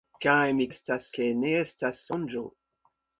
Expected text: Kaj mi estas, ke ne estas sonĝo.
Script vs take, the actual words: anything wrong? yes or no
no